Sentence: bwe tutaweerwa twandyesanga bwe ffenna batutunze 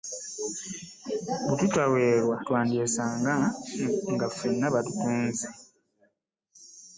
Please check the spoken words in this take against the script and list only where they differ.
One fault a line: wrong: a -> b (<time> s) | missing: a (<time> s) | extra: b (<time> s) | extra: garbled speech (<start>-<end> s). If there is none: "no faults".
wrong: bwe -> nga (4.1 s)